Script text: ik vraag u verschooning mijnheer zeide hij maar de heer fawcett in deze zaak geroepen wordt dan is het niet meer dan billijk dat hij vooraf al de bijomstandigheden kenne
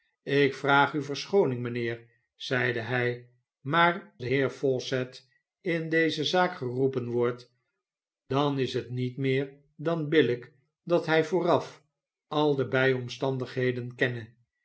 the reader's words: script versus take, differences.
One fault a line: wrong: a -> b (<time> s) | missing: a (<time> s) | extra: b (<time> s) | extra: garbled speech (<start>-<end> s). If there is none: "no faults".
no faults